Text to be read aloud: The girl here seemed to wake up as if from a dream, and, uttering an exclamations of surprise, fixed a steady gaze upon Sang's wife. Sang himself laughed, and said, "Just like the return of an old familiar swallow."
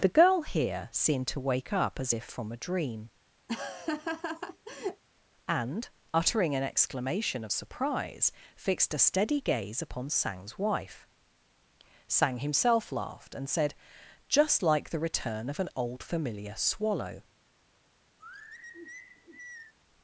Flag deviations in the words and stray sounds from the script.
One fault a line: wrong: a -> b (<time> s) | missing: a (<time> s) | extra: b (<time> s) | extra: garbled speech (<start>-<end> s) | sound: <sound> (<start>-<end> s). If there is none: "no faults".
sound: laugh (3.5-5.0 s)
wrong: exclamations -> exclamation (6.6 s)
sound: sigh (18.2-19.7 s)